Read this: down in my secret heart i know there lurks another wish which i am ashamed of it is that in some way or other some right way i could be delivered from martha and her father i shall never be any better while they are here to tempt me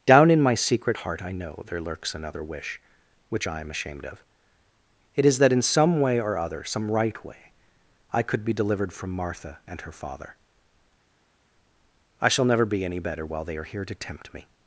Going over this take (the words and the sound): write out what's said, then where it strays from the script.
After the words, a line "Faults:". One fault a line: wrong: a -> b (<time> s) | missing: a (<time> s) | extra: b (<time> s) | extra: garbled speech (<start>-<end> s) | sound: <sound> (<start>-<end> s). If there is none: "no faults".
down in my secret heart i know there lurks another wish which i am ashamed of it is that in some way or other some right way i could be delivered from martha and her father i shall never be any better while they are here to tempt me
Faults:
no faults